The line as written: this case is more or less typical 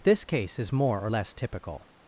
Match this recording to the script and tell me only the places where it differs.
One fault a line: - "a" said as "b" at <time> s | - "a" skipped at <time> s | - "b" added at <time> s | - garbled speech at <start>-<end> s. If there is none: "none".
none